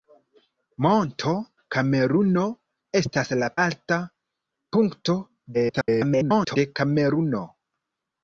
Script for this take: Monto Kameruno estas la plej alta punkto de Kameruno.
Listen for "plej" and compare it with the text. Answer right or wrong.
wrong